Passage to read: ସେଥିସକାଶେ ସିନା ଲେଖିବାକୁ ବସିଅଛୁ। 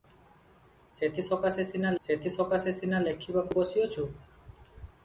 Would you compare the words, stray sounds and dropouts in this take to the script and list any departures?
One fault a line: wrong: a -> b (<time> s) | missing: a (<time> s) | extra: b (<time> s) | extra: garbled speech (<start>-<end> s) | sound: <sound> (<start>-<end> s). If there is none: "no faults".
extra: ସେଥିସକାଶେ ସିନା (2.0 s)